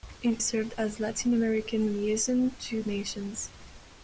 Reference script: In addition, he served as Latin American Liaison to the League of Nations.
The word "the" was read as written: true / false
false